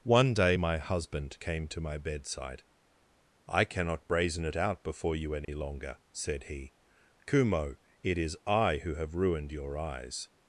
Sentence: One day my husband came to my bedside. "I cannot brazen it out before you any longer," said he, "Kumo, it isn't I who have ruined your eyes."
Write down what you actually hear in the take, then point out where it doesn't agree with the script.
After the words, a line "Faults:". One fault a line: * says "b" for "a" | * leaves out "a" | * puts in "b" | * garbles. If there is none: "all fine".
One day my husband came to my bedside. "I cannot brazen it out before you any longer," said he, "Kumo, it is I who have ruined your eyes."
Faults:
* says "is" for "isn't"